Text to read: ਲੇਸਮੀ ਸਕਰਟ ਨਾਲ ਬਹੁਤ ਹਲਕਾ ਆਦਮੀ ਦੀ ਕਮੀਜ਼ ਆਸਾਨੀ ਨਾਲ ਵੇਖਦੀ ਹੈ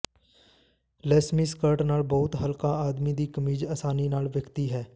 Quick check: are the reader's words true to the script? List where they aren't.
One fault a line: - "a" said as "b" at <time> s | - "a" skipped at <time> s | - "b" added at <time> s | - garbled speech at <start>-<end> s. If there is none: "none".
none